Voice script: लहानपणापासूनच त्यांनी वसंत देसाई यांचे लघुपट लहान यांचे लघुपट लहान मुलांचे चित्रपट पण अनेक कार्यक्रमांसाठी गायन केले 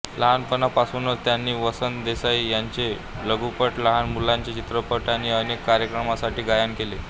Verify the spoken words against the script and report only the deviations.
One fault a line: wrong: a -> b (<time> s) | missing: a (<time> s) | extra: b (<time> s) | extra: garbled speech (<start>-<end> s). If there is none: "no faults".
missing: यांचे लघुपट लहान (4.1 s)
wrong: पण -> आणि (5.1 s)